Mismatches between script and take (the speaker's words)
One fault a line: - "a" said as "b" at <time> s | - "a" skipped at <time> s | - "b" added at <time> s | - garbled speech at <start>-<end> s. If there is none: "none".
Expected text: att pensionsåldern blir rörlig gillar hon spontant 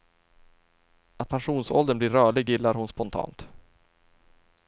none